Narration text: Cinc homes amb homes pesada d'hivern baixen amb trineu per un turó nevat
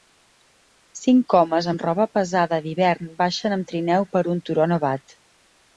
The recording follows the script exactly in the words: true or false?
false